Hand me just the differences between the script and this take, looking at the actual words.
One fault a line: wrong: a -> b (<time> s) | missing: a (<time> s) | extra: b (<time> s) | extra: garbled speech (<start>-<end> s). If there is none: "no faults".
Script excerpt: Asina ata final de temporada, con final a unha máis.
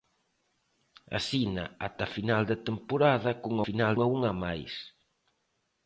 no faults